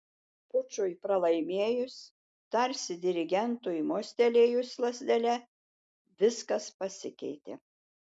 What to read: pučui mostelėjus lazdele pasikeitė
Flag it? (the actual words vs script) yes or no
yes